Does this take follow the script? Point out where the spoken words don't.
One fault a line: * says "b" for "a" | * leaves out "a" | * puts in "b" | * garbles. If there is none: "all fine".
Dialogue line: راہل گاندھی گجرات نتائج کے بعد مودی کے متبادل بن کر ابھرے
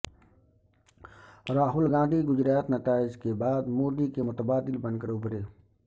all fine